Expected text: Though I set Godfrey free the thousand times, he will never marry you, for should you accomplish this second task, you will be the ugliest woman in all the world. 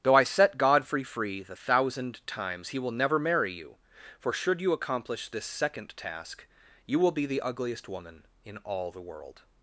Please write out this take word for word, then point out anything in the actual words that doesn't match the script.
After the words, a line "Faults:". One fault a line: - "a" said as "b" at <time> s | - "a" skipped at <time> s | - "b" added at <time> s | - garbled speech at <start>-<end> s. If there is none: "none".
Though I set Godfrey free the thousand times, he will never marry you, for should you accomplish this second task, you will be the ugliest woman in all the world.
Faults:
none